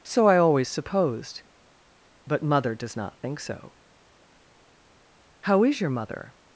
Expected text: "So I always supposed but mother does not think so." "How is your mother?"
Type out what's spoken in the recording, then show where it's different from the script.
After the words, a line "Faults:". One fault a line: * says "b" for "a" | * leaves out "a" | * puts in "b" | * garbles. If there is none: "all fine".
"So I always supposed but mother does not think so." "How is your mother?"
Faults:
all fine